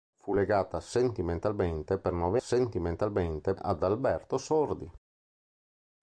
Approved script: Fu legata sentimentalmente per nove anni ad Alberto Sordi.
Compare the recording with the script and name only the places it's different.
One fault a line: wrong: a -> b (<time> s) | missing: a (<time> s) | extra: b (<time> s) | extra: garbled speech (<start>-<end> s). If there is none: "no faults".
wrong: anni -> sentimentalmente (2.4 s)